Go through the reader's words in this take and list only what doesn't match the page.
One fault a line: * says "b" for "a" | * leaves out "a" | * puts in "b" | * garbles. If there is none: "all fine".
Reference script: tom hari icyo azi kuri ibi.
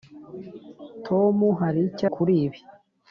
* leaves out "azi"